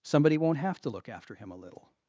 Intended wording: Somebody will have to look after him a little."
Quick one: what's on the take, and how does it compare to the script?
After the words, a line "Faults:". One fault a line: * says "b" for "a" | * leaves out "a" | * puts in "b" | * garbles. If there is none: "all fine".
Somebody won't have to look after him a little."
Faults:
* says "won't" for "will"